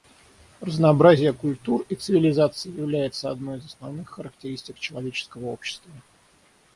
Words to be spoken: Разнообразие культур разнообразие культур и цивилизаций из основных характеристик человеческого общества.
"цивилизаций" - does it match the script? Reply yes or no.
no